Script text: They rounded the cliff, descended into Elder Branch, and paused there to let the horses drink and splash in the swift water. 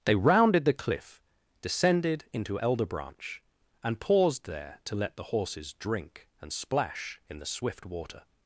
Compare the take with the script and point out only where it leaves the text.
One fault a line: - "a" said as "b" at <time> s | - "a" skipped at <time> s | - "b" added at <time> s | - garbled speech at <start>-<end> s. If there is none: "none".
none